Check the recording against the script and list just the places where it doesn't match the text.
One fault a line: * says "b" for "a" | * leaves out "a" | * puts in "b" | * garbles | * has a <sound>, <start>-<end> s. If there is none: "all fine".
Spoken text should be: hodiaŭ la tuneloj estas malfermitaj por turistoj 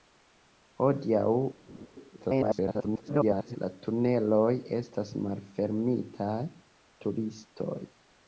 * has a laugh, 1.7-1.9 s
* garbles
* leaves out "por"